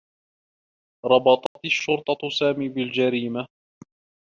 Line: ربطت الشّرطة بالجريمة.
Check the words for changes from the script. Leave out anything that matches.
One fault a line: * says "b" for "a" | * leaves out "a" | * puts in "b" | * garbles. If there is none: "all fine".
* puts in "سامي"